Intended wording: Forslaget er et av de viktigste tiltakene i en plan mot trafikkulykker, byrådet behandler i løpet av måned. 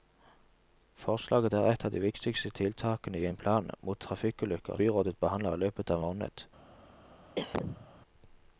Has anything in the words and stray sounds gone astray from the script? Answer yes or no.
yes